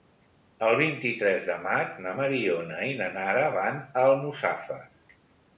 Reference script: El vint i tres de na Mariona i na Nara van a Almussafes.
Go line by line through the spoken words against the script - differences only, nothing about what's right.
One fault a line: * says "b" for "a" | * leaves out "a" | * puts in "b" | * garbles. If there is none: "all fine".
* puts in "maig"